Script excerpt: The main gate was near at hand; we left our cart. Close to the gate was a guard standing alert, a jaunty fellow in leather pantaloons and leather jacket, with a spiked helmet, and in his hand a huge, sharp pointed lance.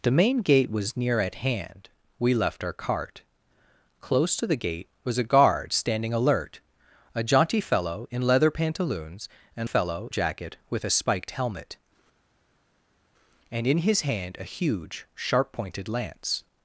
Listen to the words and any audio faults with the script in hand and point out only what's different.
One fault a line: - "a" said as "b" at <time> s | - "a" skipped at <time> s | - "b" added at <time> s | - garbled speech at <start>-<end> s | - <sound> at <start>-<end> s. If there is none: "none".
- "leather" said as "fellow" at 9.6 s